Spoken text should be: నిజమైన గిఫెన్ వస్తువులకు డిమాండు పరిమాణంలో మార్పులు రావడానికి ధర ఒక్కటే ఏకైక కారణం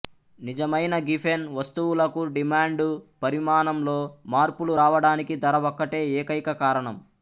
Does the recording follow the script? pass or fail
pass